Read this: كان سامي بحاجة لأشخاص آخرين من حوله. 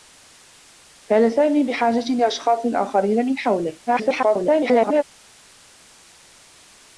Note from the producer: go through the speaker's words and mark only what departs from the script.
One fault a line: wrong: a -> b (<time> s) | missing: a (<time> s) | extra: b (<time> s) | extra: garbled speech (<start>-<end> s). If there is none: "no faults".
extra: garbled speech (3.9-5.0 s)